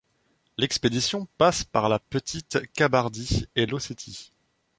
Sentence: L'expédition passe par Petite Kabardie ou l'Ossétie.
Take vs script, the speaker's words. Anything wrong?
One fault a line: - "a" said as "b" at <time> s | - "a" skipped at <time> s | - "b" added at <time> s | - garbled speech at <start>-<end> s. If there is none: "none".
- "la" added at 1.9 s
- "ou" said as "et" at 3.6 s